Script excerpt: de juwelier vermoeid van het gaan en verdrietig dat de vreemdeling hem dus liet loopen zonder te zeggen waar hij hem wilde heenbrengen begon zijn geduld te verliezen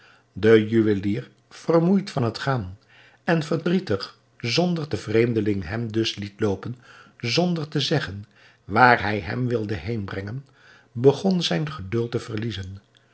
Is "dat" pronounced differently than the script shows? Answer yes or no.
yes